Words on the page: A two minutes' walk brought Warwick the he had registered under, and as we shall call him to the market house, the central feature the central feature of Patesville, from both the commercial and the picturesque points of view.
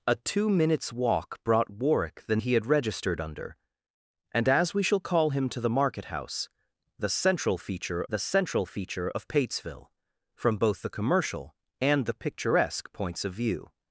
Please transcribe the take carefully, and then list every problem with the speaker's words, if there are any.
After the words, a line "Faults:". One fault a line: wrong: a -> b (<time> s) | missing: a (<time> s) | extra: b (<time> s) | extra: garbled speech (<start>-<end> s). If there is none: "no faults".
A two minutes' walk brought Warwick the he had registered under, and as we shall call him to the market house, the central feature the central feature of Patesville, from both the commercial and the picturesque points of view.
Faults:
no faults